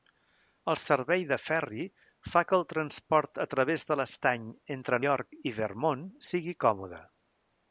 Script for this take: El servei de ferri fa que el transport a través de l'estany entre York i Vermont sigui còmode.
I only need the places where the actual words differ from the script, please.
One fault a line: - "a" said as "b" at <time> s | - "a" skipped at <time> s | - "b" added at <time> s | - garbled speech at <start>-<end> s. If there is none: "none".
none